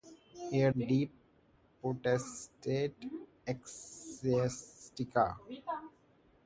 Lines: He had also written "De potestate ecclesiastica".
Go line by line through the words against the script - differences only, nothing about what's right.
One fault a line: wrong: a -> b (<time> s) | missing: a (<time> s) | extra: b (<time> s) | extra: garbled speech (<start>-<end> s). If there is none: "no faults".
missing: also written (0.7 s)